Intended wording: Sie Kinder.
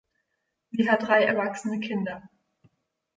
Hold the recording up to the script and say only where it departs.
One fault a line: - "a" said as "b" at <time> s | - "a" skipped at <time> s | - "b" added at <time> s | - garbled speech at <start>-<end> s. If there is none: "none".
- "hat drei erwachsene" added at 0.9 s